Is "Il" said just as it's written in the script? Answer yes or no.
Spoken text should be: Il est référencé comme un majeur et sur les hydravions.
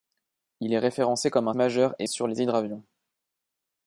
yes